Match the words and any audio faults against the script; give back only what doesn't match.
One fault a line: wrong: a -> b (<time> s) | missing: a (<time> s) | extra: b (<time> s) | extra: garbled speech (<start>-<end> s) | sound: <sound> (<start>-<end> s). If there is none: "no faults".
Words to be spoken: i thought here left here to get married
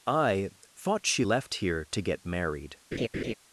wrong: here -> she (1.1 s)
sound: laugh (2.9-3.3 s)